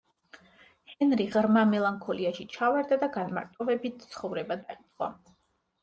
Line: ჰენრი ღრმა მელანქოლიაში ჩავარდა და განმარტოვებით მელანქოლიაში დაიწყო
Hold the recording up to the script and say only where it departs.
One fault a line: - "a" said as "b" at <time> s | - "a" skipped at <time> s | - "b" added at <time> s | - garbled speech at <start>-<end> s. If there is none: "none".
- "მელანქოლიაში" said as "ცხოვრება" at 4.2 s